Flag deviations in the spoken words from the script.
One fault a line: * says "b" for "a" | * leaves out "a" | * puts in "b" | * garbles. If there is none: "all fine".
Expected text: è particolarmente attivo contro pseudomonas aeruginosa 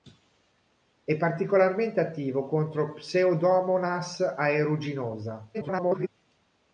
* garbles